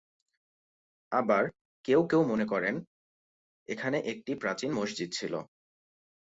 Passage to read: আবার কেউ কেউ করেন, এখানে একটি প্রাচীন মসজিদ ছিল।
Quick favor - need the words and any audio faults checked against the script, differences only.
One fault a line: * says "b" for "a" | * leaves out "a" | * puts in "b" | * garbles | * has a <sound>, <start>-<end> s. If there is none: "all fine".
* puts in "মনে"